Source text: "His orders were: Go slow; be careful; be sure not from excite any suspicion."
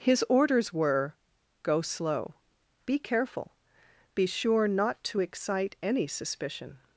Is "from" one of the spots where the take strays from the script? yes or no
yes